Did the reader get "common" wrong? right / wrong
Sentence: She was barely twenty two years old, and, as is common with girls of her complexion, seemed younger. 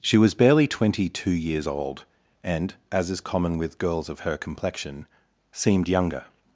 right